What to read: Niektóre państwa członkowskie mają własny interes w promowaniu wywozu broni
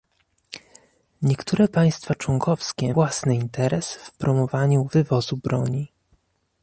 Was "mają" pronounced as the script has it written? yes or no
no